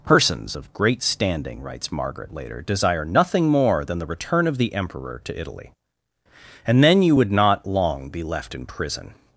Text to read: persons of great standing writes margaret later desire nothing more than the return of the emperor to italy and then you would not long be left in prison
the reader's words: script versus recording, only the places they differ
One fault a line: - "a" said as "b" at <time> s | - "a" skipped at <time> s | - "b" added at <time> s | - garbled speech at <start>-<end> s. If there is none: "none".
none